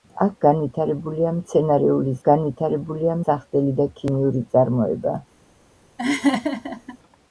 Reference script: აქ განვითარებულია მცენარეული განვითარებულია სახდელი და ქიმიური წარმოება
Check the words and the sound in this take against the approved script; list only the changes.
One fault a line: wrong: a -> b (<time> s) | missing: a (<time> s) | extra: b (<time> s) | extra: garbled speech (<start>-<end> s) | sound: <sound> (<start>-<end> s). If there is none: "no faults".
sound: laugh (6.0-7.0 s)